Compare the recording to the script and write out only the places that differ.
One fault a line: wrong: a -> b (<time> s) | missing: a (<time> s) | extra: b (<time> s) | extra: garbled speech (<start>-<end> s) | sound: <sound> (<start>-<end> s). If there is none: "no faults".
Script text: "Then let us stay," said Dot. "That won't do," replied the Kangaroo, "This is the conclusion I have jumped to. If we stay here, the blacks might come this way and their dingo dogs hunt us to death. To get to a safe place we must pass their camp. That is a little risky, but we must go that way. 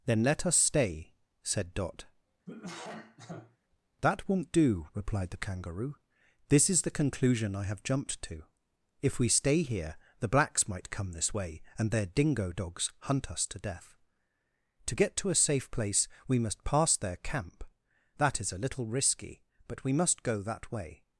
sound: cough (2.5-3.6 s)